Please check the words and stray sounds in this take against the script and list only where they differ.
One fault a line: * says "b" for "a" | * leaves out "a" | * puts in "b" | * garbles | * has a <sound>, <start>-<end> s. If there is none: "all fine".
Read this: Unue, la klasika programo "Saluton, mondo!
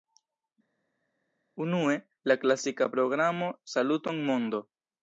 all fine